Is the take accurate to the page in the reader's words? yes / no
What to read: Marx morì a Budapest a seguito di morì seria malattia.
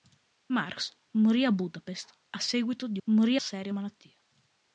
yes